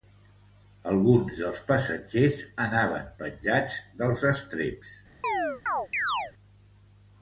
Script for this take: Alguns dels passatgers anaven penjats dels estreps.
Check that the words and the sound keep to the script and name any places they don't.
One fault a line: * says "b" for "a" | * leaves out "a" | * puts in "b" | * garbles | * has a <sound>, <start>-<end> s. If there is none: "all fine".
* has a chirp, 5.2-6.3 s